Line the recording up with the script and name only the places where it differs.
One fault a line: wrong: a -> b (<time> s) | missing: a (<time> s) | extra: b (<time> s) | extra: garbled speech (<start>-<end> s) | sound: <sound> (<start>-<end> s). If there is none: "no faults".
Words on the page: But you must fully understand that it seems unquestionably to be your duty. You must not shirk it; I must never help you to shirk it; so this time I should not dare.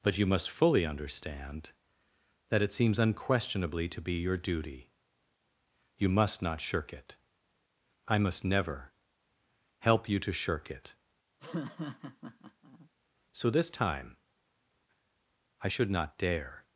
sound: laugh (11.4-12.9 s)